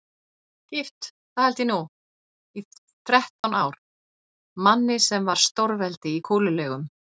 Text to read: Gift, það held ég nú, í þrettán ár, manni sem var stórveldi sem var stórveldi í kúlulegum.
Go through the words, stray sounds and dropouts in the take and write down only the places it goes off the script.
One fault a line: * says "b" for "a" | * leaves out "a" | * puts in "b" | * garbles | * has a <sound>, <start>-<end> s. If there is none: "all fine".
* has a dropout, 3.4-3.4 s
* leaves out "sem var stórveldi"